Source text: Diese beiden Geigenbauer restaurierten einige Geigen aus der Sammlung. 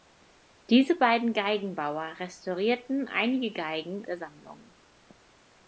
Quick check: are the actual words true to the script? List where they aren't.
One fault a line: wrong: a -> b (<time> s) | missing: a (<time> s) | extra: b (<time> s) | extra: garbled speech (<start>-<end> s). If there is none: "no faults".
missing: aus (4.1 s)